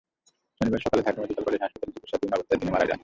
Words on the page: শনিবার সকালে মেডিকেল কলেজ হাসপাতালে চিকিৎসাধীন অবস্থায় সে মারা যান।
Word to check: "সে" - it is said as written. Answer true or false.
false